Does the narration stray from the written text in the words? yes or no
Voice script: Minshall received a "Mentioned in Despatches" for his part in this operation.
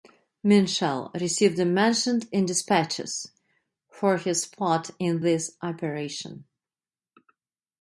no